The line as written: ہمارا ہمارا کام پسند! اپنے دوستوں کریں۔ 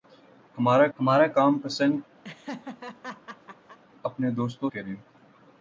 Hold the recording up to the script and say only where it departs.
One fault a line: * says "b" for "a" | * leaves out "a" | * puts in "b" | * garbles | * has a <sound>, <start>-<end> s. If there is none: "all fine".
* has a laugh, 2.2-3.8 s